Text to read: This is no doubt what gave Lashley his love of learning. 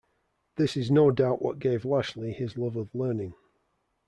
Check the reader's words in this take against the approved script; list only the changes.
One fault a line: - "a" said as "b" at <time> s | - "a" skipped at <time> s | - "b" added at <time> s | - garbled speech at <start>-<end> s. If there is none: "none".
none